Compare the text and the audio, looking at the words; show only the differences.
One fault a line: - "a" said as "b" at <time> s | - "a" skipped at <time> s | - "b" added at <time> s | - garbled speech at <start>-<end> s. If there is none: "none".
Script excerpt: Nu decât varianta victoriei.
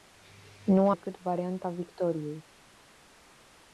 none